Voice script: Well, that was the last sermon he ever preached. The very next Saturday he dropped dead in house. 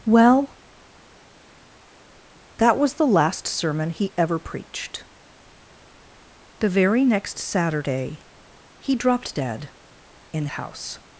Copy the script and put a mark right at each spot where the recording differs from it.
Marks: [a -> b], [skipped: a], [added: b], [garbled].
Well, that was the last sermon he ever preached. The very next Saturday he dropped dead in house.